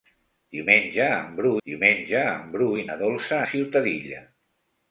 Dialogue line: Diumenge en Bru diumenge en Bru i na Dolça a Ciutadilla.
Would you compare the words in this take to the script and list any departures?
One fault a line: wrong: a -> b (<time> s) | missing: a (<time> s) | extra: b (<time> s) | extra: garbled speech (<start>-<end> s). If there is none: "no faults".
no faults